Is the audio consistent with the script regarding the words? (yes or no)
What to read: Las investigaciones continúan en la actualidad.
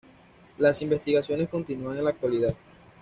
yes